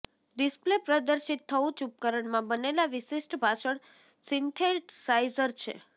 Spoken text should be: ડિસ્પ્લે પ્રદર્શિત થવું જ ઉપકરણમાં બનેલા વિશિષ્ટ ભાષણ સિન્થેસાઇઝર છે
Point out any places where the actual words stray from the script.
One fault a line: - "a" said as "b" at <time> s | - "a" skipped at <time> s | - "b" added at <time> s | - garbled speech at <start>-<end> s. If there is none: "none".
none